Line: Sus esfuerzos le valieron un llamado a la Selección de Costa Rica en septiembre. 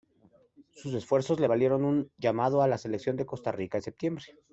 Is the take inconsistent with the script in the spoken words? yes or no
no